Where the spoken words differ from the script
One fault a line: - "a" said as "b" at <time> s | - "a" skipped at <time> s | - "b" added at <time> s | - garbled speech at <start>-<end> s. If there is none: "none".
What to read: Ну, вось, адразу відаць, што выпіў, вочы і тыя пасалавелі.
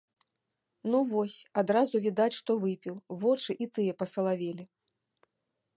none